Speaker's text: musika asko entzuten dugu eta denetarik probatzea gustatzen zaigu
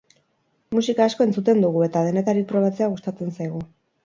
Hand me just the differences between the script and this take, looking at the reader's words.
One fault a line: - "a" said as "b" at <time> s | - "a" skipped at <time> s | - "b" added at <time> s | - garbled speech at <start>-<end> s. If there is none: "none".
none